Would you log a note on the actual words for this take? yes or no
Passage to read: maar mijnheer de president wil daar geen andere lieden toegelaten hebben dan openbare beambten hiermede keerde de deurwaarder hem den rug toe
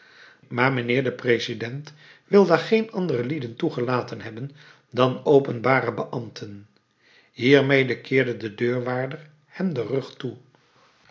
no